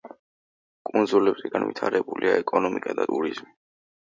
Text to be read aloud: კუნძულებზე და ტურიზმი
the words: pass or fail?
fail